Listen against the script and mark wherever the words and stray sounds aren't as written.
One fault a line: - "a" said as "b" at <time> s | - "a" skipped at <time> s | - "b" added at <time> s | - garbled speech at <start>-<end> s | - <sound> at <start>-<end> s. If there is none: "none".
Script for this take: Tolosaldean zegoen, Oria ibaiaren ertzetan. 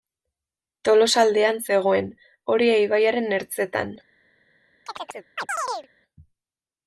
- chirp at 4.9-5.9 s